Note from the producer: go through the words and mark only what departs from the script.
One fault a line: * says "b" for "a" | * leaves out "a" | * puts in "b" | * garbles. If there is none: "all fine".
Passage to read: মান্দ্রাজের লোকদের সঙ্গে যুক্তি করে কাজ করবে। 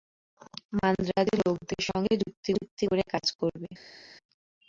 * puts in "যুক্তি"